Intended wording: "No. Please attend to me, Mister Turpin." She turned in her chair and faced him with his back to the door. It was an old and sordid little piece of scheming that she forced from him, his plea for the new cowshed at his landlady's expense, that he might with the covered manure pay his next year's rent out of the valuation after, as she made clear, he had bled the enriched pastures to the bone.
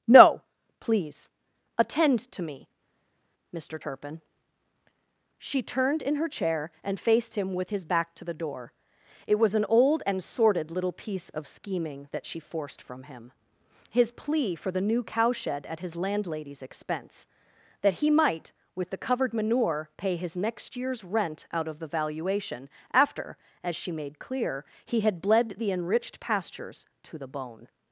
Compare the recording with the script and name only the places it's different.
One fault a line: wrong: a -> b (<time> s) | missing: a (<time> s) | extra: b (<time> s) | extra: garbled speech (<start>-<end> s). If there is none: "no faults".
no faults